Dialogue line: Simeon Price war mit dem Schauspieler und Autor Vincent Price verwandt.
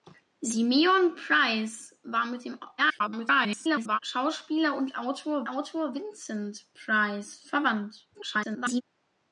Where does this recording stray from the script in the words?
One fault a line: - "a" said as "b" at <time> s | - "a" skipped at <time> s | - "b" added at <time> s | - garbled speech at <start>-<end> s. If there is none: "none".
- garbled speech at 2.8-4.0 s
- "Autor" added at 5.5 s
- garbled speech at 8.1-8.8 s